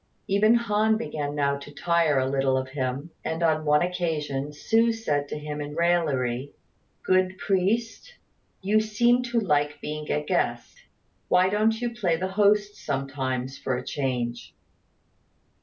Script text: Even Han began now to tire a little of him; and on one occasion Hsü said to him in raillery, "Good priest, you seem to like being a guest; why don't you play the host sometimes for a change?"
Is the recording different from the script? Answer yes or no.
no